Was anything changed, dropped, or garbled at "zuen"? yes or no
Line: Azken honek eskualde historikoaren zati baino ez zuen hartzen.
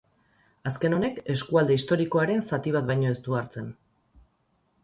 yes